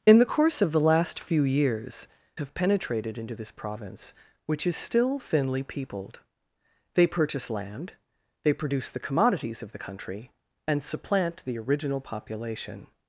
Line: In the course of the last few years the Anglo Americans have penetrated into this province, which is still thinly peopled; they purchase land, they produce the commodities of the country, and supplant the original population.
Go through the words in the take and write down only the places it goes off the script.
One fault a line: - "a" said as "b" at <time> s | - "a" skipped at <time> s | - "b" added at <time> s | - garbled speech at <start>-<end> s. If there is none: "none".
- "the Anglo Americans" skipped at 2.1 s